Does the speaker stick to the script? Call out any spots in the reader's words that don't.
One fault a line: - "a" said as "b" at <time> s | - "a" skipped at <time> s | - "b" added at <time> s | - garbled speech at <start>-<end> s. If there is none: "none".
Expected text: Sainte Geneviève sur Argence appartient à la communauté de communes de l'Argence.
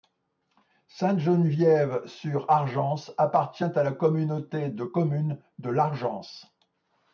none